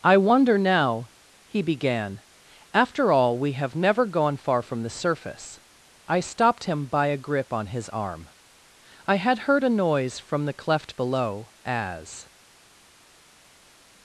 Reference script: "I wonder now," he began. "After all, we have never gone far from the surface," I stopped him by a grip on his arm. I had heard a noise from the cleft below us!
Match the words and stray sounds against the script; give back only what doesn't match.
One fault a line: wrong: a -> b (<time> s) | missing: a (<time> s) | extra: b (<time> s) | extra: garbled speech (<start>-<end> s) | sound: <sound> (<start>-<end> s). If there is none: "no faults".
wrong: us -> as (11.6 s)